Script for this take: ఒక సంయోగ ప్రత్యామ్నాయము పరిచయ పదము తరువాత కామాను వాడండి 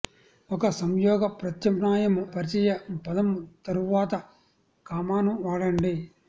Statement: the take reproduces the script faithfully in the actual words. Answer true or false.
true